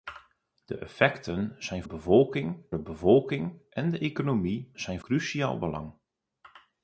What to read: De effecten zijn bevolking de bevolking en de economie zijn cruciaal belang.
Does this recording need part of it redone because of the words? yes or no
no